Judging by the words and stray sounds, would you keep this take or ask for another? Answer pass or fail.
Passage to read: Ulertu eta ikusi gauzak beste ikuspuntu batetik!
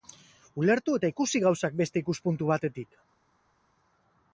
pass